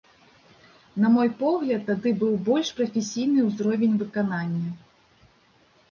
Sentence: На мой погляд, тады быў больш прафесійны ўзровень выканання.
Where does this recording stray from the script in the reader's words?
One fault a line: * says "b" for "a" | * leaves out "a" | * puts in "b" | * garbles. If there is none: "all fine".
all fine